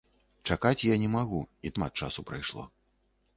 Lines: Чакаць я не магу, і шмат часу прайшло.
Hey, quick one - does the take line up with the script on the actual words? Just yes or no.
yes